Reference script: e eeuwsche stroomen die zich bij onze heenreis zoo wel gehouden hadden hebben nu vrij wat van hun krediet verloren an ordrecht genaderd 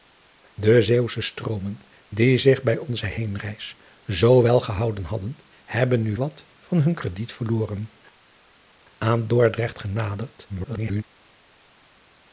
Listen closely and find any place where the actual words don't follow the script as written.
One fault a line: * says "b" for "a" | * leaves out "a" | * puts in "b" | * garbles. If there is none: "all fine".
* leaves out "vrij"
* garbles